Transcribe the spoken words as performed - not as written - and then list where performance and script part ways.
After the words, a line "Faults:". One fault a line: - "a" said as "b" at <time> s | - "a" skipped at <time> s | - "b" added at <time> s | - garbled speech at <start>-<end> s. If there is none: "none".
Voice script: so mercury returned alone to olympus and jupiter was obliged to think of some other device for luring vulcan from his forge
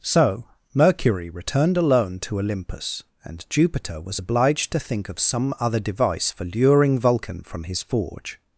so mercury returned alone to olympus and jupiter was obliged to think of some other device for luring vulcan from his forge
Faults:
none